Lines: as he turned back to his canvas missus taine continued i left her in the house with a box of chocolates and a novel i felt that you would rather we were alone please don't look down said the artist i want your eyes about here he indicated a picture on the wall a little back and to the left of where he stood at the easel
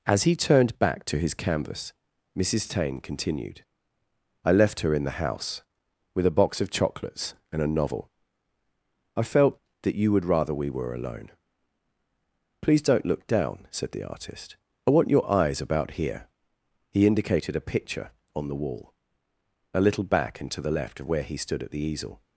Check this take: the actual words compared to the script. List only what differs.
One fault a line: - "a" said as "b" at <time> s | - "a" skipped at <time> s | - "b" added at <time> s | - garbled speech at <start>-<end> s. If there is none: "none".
none